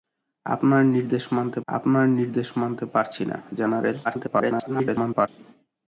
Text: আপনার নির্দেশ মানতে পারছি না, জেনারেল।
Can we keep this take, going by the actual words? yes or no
no